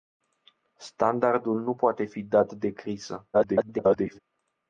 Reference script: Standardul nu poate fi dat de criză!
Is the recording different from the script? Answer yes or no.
yes